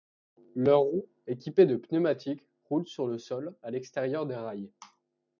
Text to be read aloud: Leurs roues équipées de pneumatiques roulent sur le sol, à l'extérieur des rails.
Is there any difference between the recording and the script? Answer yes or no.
no